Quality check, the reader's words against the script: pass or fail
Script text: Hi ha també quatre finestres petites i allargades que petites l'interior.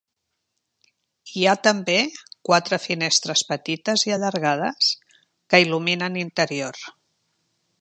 fail